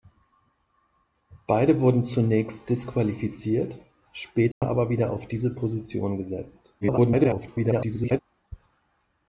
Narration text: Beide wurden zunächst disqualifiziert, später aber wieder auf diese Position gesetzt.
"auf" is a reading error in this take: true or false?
false